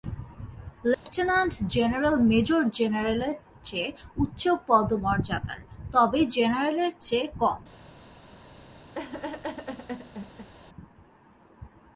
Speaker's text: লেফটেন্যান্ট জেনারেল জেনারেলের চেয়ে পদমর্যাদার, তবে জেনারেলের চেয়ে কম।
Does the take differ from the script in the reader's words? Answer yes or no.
yes